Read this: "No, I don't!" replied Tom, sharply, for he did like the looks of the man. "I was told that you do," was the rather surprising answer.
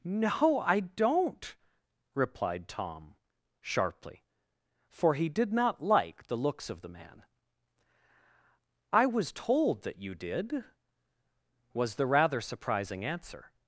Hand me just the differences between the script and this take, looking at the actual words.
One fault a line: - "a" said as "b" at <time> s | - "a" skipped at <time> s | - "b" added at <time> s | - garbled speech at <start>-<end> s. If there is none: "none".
- "not" added at 5.5 s
- "do" said as "did" at 10.1 s